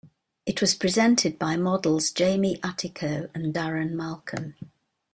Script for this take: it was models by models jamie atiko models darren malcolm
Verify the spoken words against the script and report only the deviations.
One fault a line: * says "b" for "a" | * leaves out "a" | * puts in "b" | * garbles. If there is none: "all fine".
* says "presented" for "models"
* says "and" for "models"